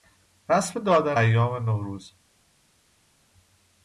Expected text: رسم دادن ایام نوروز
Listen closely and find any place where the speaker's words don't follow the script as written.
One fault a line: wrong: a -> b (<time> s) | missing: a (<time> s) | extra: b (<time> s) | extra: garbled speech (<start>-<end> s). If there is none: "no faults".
no faults